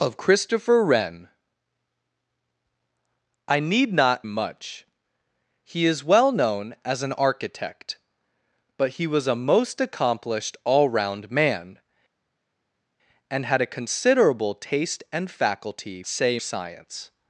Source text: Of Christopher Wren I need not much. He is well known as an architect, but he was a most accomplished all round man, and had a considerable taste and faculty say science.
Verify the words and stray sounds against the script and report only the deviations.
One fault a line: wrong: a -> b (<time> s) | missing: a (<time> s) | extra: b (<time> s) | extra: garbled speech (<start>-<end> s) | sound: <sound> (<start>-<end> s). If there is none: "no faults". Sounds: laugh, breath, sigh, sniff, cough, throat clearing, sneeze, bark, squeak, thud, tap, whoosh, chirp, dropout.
no faults